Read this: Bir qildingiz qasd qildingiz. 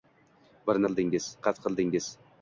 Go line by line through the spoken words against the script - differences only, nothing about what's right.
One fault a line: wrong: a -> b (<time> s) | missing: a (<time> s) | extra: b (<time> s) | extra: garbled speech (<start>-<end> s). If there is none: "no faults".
no faults